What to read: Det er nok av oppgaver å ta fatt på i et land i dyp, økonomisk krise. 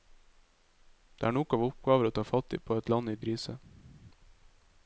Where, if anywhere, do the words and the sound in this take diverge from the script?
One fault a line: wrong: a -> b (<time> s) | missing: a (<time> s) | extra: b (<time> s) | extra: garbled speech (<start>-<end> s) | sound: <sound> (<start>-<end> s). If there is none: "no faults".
missing: dyp økonomisk (3.2 s)